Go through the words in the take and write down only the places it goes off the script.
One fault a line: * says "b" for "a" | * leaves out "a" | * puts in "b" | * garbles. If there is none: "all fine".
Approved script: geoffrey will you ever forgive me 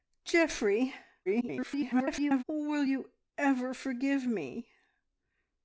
* garbles